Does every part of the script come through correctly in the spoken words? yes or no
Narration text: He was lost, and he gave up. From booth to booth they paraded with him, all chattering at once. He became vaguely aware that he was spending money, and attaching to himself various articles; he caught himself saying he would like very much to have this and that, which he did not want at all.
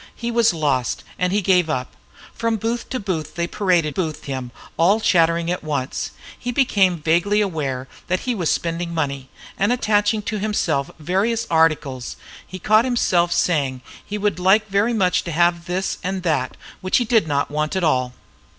no